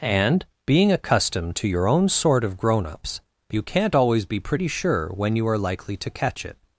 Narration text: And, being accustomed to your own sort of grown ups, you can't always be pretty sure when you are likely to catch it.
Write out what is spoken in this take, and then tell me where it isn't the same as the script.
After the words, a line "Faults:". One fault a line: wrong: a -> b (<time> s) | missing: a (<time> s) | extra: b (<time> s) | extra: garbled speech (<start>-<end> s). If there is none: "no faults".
And, being accustomed to your own sort of grown ups, you can't always be pretty sure when you are likely to catch it.
Faults:
no faults